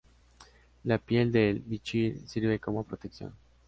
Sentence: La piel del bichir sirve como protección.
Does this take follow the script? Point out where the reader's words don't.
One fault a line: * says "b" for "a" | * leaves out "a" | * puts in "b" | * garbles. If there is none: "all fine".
all fine